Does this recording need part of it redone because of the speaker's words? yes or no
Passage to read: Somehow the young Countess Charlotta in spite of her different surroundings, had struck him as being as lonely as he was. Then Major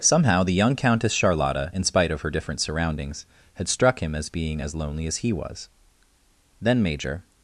no